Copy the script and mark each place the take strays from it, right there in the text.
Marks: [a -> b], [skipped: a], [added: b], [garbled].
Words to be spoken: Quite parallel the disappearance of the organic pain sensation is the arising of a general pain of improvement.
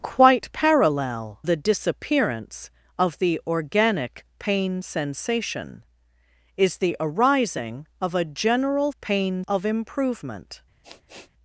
Quite parallel the disappearance of the organic pain sensation is the arising of a general pain of improvement.